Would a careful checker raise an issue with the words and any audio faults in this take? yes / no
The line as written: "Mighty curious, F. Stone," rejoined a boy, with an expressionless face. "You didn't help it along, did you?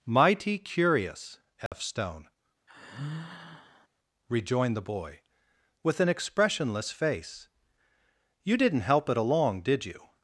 yes